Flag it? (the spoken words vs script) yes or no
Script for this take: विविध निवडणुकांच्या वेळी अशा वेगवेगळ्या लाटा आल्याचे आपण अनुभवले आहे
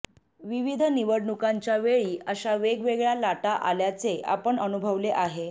no